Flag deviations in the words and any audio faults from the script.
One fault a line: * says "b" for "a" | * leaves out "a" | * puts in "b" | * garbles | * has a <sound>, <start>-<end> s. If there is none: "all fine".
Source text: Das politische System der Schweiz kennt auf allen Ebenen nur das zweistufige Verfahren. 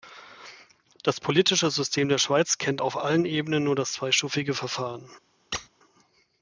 * has a squeak, 5.5-5.7 s